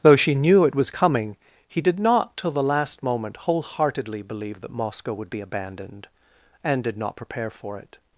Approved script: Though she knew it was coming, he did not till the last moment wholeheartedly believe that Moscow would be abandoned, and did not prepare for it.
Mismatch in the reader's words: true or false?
false